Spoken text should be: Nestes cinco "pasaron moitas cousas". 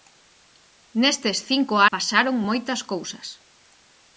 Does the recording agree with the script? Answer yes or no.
yes